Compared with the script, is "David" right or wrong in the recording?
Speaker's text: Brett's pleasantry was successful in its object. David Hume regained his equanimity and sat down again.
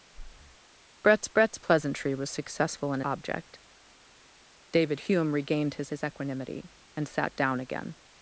right